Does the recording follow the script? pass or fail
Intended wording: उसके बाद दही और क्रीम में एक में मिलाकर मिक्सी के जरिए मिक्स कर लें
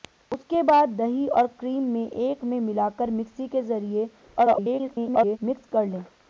fail